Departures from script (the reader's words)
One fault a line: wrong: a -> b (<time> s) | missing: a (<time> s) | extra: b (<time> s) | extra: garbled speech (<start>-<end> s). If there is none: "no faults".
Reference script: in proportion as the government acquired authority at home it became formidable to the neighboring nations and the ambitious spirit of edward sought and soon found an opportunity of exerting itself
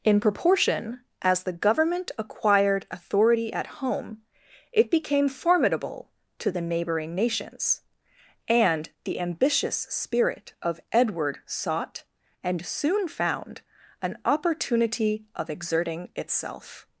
no faults